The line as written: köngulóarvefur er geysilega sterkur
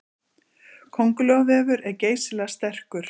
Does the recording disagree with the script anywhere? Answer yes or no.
no